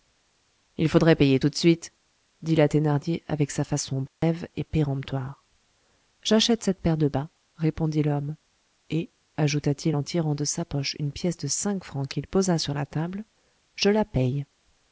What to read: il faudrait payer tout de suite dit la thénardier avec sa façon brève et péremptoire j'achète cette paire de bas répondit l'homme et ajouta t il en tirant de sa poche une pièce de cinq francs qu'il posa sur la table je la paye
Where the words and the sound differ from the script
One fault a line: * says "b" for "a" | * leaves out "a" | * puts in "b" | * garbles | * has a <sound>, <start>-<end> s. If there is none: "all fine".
* has a dropout, 4.1-4.2 s